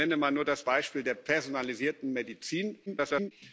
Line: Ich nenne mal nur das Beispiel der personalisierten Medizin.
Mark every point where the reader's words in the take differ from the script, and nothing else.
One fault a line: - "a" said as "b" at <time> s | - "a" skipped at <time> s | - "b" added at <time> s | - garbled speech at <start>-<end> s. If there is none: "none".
- garbled speech at 2.9-3.3 s